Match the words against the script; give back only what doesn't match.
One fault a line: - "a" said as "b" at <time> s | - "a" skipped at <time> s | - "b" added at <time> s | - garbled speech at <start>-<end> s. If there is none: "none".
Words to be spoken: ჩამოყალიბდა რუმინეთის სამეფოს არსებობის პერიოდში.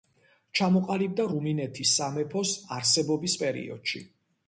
none